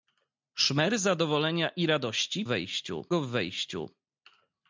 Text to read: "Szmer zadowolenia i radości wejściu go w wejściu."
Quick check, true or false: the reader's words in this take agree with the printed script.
true